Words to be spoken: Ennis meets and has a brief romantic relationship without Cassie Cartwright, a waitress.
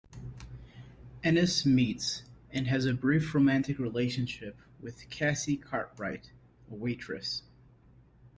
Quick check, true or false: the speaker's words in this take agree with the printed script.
false